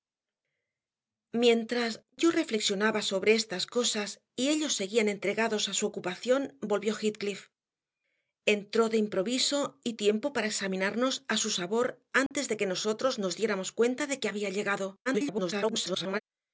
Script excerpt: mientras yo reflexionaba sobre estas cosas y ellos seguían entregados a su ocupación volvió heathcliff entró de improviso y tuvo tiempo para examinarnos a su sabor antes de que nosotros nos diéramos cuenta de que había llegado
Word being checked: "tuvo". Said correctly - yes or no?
no